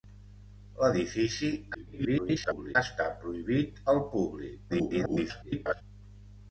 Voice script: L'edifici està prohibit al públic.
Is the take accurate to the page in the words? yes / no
no